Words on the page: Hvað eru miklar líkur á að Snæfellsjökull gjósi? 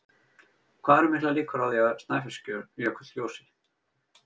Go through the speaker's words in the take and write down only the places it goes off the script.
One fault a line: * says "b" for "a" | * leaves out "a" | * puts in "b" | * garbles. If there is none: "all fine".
* puts in "því"